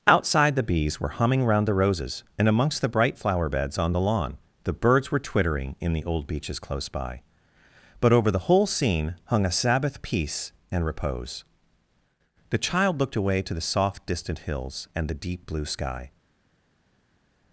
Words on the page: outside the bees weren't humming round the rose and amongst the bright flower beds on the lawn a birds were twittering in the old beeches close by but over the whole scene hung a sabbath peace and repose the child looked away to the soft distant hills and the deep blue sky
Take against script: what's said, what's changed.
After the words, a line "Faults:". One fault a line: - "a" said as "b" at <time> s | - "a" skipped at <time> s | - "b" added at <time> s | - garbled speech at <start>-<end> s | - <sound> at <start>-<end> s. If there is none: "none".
outside the bees were humming round the roses and amongst the bright flower beds on the lawn the birds were twittering in the old beeches close by but over the whole scene hung a sabbath peace and repose the child looked away to the soft distant hills and the deep blue sky
Faults:
- "weren't" said as "were" at 1.0 s
- "rose" said as "roses" at 1.8 s
- "a" said as "the" at 4.6 s